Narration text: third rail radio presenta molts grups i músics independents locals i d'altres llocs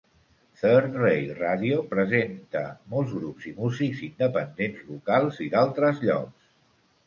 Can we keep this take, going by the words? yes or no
yes